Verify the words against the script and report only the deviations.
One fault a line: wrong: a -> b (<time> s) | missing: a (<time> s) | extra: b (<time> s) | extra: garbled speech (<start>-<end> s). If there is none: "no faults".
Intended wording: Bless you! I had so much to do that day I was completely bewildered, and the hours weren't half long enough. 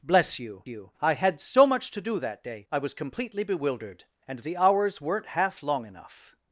extra: you (0.7 s)